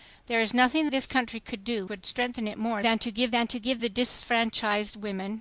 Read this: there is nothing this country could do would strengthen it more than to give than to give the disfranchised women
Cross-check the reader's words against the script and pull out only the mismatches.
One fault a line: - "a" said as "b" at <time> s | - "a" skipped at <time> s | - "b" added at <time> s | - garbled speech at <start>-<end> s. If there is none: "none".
none